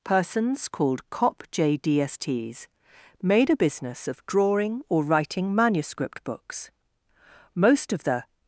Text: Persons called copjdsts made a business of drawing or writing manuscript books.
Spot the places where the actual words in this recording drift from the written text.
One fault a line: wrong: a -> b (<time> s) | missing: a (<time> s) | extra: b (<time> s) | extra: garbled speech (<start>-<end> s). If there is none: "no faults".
extra: Most of the (7.5 s)